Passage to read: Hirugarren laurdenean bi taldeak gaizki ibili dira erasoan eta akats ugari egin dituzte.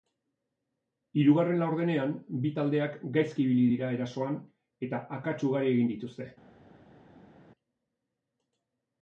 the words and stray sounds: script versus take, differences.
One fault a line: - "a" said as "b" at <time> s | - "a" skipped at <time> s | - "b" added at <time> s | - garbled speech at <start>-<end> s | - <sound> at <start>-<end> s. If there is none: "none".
none